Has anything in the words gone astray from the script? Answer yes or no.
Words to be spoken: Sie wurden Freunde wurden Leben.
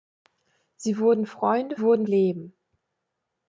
no